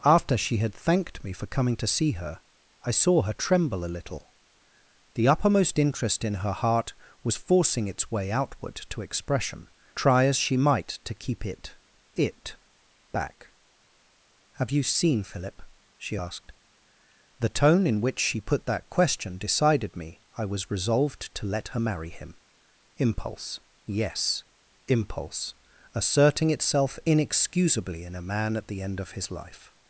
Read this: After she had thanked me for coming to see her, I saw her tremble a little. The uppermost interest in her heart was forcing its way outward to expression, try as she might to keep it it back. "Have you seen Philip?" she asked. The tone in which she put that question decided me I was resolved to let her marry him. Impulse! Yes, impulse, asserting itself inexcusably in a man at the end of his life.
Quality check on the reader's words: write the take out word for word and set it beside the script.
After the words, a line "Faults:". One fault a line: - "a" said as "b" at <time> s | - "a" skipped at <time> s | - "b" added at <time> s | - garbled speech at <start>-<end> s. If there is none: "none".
After she had thanked me for coming to see her, I saw her tremble a little. The uppermost interest in her heart was forcing its way outward to expression, try as she might to keep it it back. "Have you seen Philip?" she asked. The tone in which she put that question decided me I was resolved to let her marry him. Impulse! Yes, impulse, asserting itself inexcusably in a man at the end of his life.
Faults:
none